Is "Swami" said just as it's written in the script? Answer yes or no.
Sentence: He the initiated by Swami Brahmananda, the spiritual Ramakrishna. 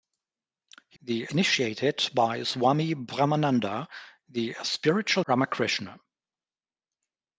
yes